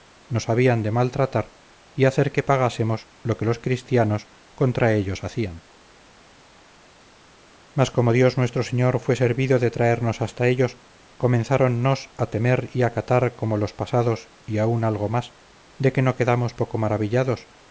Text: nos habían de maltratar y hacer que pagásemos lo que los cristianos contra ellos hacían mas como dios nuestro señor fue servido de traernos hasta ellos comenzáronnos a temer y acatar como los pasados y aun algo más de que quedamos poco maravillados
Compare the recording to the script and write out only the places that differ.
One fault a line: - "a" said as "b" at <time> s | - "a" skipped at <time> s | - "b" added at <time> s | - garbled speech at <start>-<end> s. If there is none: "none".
- "no" added at 16.0 s